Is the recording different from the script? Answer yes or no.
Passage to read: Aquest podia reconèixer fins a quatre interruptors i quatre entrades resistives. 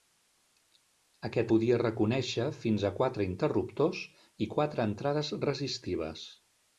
no